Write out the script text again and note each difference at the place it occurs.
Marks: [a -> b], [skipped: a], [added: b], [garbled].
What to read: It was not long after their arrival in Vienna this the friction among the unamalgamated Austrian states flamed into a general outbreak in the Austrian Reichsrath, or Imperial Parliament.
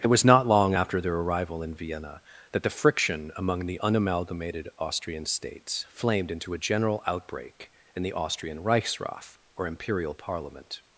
It was not long after their arrival in Vienna [this -> that] the friction among the unamalgamated Austrian states flamed into a general outbreak in the Austrian Reichsrath, or Imperial Parliament.